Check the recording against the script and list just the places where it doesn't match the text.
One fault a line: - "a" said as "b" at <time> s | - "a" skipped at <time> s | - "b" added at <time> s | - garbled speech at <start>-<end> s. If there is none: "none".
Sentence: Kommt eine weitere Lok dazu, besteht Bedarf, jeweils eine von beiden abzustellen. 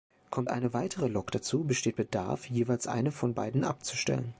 none